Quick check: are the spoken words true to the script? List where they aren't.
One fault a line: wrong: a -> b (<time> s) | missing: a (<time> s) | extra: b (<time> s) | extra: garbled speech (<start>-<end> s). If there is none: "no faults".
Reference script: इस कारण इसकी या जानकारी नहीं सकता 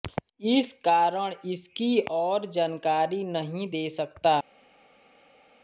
wrong: या -> और (2.1 s)
extra: दे (3.7 s)